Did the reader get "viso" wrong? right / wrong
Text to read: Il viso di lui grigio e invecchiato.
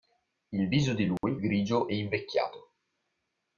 right